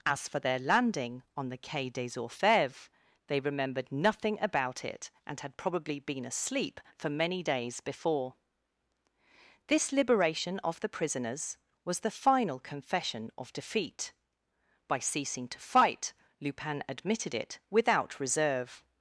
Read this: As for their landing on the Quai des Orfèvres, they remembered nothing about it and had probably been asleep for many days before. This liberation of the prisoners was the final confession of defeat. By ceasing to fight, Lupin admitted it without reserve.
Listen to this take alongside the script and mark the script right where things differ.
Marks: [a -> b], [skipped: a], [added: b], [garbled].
As for their landing on the Quai des Orfèvres, they remembered nothing about it and had probably been asleep for many days before. This liberation of the prisoners was the final confession of defeat. By ceasing to fight, Lupin admitted it without reserve.